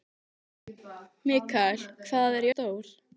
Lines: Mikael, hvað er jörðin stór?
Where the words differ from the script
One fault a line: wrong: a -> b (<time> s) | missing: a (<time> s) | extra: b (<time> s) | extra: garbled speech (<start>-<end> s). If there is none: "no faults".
missing: jörðin (2.5 s)